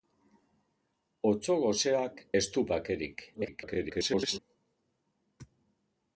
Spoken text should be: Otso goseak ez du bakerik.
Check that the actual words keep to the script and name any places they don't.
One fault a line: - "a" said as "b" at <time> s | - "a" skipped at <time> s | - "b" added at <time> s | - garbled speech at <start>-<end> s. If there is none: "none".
- garbled speech at 3.3-4.4 s